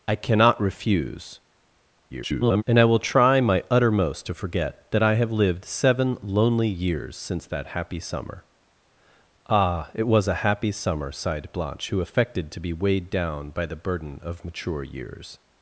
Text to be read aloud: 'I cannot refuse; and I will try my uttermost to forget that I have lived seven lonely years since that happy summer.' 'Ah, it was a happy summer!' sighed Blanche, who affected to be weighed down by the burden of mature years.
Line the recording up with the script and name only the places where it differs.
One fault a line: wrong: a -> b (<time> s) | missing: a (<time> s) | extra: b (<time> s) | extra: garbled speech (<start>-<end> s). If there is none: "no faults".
extra: garbled speech (2.1-2.6 s)